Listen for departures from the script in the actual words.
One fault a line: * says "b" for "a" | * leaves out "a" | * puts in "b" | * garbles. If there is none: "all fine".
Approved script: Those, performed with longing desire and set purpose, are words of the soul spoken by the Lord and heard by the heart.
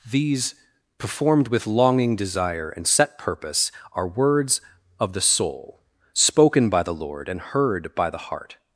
* says "These" for "Those"